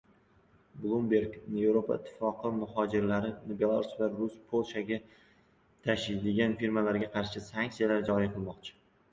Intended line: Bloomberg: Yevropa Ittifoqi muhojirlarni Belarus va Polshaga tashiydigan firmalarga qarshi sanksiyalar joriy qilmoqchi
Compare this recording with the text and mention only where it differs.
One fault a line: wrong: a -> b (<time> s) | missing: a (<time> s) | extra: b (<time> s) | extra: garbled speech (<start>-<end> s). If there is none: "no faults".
no faults